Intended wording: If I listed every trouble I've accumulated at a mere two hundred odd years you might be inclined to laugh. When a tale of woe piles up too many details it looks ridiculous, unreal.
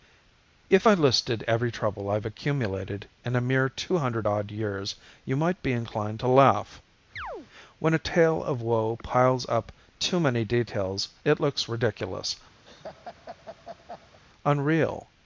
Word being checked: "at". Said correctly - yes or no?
no